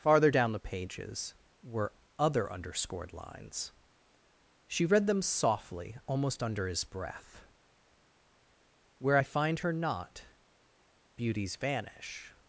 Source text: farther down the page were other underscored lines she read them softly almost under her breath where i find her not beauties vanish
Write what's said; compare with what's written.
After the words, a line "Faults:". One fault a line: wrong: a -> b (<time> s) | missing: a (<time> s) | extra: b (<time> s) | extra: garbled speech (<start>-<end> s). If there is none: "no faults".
farther down the pages were other underscored lines she read them softly almost under his breath where i find her not beauties vanish
Faults:
wrong: page -> pages (0.6 s)
wrong: her -> his (6.7 s)